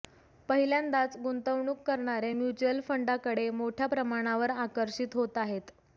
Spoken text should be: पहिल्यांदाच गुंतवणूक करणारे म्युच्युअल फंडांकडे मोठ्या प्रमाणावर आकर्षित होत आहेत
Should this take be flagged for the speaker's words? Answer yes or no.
no